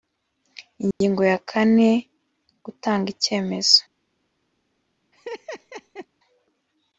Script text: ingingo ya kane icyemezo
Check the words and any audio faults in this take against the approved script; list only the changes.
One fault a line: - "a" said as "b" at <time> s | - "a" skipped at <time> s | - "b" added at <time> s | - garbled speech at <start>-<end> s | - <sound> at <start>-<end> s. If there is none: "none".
- dropout at 0.9-1.0 s
- "gutanga" added at 2.6 s
- laugh at 5.1-6.1 s